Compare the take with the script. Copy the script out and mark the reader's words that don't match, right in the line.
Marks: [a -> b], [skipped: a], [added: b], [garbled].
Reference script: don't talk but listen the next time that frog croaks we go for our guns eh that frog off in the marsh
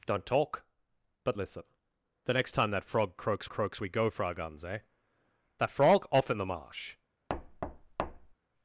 don't talk but listen the next time that frog croaks [added: croaks] we go for our guns eh that frog off in the marsh